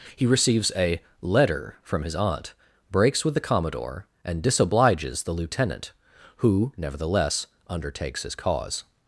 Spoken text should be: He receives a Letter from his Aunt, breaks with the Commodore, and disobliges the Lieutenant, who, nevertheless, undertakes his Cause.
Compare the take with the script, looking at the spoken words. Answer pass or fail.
pass